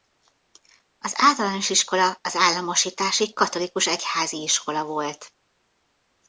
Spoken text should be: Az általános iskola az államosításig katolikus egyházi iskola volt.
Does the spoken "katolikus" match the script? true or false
true